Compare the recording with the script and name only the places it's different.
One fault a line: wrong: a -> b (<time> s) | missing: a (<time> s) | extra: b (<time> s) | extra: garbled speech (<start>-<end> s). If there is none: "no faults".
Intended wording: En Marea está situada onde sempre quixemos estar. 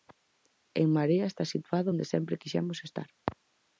no faults